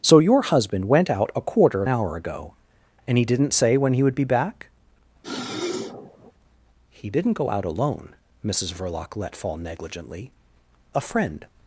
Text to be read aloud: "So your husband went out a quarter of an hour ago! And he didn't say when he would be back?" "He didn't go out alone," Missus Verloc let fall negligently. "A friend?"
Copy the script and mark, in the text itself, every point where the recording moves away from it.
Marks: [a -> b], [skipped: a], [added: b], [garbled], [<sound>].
"So your husband went out a quarter of [skipped: an] hour ago! And he didn't say when he would be back?" [sniff] "He didn't go out alone," Missus Verloc let fall negligently. "A friend?"